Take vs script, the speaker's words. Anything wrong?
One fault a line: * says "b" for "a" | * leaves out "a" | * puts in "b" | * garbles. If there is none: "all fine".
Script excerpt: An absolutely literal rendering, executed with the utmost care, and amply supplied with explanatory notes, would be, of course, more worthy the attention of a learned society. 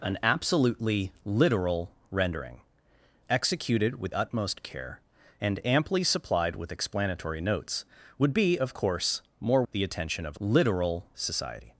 * leaves out "the"
* leaves out "worthy"
* says "literal" for "learned"